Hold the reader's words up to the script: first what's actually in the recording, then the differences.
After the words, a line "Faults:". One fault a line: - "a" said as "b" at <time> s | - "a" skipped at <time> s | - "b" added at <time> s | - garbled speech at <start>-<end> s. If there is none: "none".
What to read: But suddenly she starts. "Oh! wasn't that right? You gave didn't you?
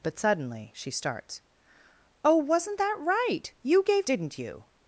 But suddenly she starts. "Oh! wasn't that right? You gave didn't you?
Faults:
none